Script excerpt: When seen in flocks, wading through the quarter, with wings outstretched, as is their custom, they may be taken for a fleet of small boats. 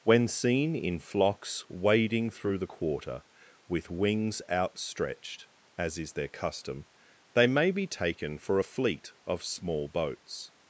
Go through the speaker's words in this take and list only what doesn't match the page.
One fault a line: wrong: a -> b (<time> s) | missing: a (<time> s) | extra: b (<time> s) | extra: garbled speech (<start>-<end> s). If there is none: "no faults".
no faults